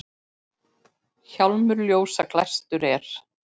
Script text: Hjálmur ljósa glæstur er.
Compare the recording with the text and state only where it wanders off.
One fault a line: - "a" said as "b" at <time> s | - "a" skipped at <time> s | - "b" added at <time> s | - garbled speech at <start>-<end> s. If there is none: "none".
none